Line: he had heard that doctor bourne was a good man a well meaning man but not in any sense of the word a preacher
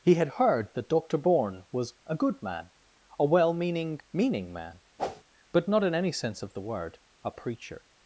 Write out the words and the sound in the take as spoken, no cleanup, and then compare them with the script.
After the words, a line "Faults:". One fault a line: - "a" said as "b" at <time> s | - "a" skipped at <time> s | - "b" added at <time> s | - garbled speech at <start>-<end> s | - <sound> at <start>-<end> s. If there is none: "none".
he had heard that doctor bourne was a good man a well meaning meaning man but not in any sense of the word a preacher
Faults:
- "meaning" added at 4.1 s
- whoosh at 5.0-5.2 s